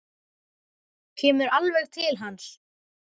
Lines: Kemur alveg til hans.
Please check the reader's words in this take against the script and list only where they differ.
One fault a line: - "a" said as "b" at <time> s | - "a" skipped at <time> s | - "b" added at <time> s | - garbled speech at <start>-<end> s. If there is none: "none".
none